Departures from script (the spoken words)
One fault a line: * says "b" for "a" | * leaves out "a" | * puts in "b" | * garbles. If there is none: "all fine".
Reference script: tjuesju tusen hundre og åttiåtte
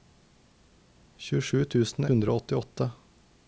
all fine